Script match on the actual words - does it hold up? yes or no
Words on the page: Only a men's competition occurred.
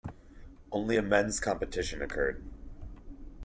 yes